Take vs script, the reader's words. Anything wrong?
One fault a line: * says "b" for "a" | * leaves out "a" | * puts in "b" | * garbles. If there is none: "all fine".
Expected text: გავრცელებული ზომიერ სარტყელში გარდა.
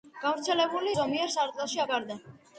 all fine